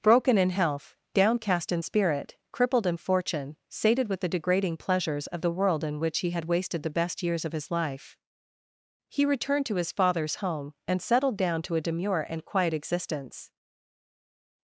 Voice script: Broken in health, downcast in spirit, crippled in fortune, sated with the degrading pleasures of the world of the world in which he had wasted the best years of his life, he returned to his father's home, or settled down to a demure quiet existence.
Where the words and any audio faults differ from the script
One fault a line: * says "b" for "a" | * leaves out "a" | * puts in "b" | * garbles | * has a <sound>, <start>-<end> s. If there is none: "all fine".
* leaves out "of the world"
* says "and" for "or"
* puts in "and"